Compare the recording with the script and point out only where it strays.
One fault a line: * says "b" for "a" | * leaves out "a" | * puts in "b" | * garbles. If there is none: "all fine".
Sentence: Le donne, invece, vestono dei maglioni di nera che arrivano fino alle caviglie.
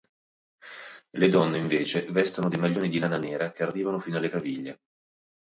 * puts in "lana"